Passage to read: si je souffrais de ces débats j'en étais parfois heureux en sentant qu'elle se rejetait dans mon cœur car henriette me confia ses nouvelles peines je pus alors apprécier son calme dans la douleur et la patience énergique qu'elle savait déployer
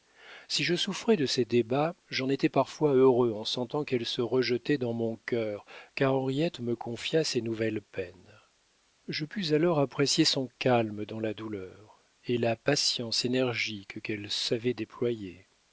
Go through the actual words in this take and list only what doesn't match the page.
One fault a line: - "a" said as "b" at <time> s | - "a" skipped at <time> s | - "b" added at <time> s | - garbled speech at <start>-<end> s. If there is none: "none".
none